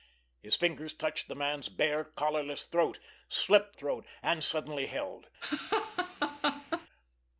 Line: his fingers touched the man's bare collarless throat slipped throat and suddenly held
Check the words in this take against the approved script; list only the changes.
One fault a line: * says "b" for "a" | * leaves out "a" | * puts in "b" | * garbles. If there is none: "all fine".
all fine